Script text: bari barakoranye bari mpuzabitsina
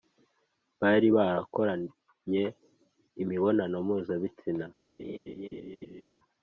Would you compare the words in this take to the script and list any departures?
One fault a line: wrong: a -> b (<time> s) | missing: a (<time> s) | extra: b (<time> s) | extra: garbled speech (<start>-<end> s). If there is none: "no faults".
wrong: bari -> imibonano (3.2 s)